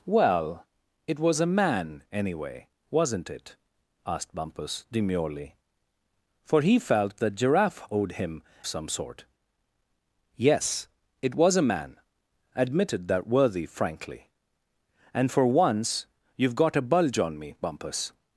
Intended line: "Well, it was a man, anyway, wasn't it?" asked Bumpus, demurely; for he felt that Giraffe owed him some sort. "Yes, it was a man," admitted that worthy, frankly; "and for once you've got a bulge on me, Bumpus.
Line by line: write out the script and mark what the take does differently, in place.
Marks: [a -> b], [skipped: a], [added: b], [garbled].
"Well, it was a man, anyway, wasn't it?" asked Bumpus, demurely; for he felt that Giraffe owed him some sort. "Yes, it was a man," admitted that worthy, frankly; "and for once you've got a bulge on me, Bumpus.